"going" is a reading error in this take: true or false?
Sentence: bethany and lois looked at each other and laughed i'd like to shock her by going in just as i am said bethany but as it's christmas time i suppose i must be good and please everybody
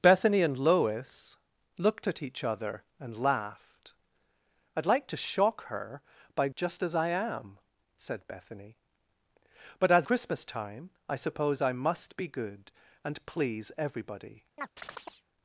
true